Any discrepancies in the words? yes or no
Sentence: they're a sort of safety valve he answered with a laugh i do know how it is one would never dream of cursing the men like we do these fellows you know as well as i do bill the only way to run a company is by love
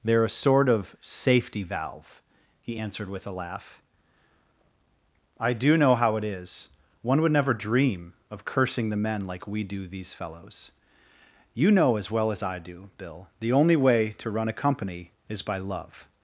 no